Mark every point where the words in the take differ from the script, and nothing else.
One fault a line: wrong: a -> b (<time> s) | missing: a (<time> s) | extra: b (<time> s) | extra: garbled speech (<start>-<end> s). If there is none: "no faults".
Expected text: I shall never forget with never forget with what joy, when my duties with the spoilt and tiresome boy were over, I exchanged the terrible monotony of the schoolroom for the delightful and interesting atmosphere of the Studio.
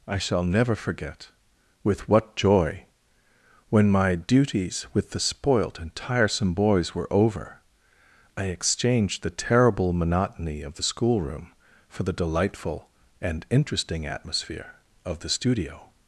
missing: never forget with (2.1 s)
wrong: boy -> boys (6.5 s)